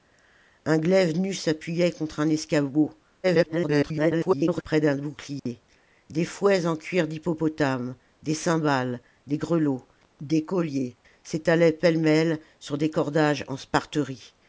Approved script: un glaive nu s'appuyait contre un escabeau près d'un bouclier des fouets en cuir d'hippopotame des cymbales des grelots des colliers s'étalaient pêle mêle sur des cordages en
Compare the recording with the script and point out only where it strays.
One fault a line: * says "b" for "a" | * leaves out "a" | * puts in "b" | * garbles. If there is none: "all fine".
* garbles